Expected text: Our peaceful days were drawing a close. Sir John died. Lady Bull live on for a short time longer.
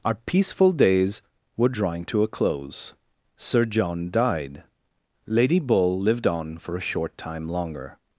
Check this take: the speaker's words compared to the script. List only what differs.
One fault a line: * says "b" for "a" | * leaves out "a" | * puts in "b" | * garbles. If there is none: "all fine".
* puts in "to"
* says "lived" for "live"